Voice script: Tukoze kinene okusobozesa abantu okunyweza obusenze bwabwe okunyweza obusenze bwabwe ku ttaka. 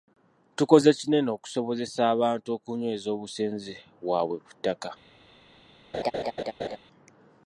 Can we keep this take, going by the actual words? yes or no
no